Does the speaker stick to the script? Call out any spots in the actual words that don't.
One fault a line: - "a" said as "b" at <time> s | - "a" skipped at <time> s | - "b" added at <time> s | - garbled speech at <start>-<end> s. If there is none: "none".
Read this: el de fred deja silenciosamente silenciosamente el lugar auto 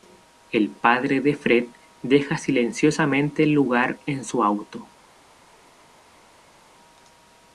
- "padre" added at 0.7 s
- "silenciosamente" skipped at 3.4 s
- "en su" added at 4.1 s